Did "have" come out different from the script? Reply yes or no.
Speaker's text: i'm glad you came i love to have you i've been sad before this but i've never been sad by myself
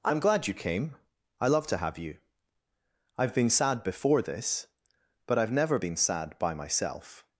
no